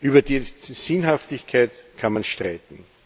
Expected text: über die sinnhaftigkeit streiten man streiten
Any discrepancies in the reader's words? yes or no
yes